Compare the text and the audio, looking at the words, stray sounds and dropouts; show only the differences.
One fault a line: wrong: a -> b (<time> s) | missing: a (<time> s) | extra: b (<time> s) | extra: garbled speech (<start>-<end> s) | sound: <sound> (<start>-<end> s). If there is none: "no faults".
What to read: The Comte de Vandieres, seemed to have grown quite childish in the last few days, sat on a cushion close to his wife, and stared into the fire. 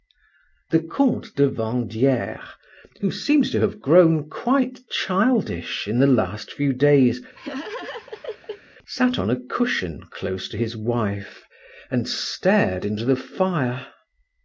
extra: who (3.0 s)
sound: laugh (7.3-8.6 s)